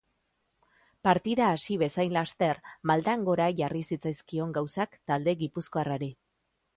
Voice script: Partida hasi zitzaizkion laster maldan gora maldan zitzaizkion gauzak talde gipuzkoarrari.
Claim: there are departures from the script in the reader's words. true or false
true